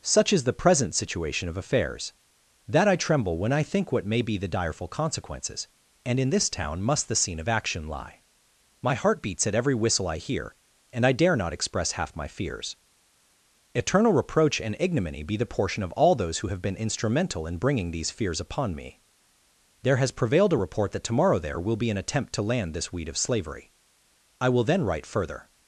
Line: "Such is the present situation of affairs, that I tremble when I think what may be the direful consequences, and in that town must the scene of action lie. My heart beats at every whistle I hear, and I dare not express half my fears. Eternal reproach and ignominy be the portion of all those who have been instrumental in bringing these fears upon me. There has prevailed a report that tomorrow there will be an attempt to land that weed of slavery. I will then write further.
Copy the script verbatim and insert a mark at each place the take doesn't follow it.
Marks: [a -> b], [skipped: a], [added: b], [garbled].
"Such is the present situation of affairs, that I tremble when I think what may be the direful consequences, and in [that -> this] town must the scene of action lie. My heart beats at every whistle I hear, and I dare not express half my fears. Eternal reproach and ignominy be the portion of all those who have been instrumental in bringing these fears upon me. There has prevailed a report that tomorrow there will be an attempt to land [that -> this] weed of slavery. I will then write further.